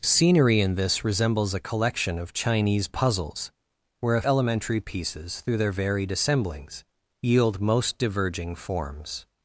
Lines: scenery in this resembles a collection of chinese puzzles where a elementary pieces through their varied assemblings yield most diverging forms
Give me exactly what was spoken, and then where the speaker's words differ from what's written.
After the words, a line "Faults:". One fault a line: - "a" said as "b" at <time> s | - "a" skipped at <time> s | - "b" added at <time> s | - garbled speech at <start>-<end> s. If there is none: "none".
scenery in this resembles a collection of chinese puzzles where a elementary pieces through their varied assemblings yield most diverging forms
Faults:
none